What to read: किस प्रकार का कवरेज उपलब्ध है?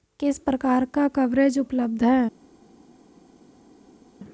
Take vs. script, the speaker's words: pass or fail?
pass